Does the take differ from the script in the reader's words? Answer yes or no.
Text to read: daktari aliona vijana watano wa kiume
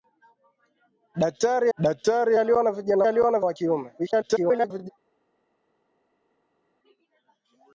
yes